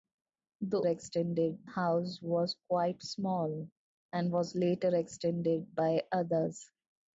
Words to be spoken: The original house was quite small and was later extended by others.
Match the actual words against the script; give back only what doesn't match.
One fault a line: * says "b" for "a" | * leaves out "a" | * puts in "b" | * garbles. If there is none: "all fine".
* says "extended" for "original"